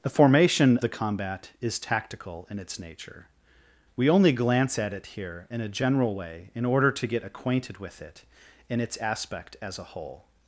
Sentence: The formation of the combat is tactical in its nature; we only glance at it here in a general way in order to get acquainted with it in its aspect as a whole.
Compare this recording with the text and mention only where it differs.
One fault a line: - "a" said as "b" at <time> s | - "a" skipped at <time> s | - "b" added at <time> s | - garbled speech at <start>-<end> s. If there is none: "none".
- "of" skipped at 0.8 s